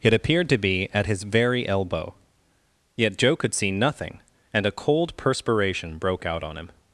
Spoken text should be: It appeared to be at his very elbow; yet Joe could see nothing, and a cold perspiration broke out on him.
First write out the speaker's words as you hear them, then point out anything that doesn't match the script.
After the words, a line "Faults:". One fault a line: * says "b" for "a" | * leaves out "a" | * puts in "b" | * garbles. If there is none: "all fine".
It appeared to be at his very elbow; yet Joe could see nothing, and a cold perspiration broke out on him.
Faults:
all fine